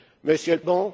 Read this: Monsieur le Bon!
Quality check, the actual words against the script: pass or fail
pass